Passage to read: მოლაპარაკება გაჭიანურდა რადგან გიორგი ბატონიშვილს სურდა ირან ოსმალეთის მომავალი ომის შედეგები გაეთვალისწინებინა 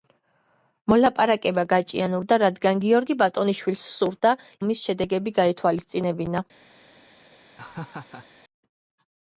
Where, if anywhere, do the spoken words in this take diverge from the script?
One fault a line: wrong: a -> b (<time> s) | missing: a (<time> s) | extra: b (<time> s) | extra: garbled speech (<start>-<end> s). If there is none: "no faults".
missing: ირან ოსმალეთის მომავალი (4.3 s)